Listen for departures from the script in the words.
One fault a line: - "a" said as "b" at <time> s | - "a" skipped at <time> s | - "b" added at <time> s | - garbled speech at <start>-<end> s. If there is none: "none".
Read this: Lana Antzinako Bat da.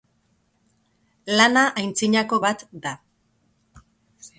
none